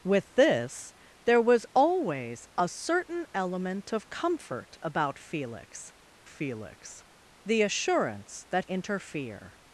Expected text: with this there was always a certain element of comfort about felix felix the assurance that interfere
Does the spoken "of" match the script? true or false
true